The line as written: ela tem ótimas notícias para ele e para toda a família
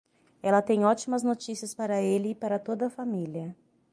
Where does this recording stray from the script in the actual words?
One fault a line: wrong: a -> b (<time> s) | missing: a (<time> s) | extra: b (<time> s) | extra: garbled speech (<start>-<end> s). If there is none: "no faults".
no faults